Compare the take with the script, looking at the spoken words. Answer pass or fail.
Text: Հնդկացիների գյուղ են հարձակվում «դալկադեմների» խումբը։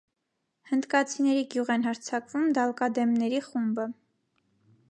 pass